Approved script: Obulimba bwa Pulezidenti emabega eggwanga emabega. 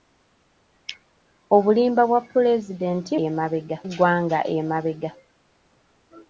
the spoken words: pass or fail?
pass